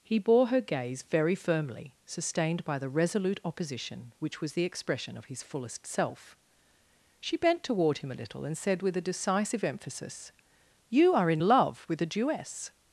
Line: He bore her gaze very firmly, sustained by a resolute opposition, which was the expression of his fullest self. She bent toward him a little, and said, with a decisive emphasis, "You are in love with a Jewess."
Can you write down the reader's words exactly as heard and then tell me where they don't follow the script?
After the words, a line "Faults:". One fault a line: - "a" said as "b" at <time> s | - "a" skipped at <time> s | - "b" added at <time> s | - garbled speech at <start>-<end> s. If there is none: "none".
He bore her gaze very firmly, sustained by the resolute opposition, which was the expression of his fullest self. She bent toward him a little, and said, with a decisive emphasis, "You are in love with a Jewess."
Faults:
- "a" said as "the" at 2.8 s